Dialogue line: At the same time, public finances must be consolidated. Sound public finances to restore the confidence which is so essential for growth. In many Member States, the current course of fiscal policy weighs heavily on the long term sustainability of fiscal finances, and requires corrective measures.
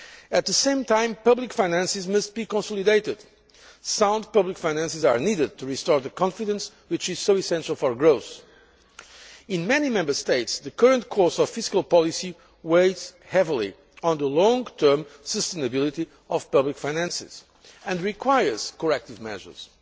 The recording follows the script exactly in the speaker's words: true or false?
false